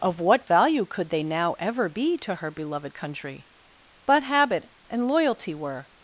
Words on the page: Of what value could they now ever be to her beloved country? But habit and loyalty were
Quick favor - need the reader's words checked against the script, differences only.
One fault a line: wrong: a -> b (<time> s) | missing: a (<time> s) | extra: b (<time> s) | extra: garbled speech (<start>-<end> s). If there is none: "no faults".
no faults